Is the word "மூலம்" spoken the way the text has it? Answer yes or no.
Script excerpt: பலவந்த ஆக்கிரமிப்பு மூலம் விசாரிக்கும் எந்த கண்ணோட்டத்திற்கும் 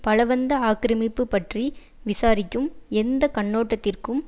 no